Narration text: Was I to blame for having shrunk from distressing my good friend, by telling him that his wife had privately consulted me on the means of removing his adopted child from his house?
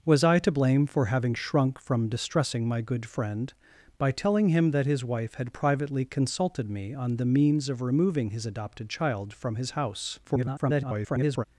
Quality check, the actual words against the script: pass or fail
fail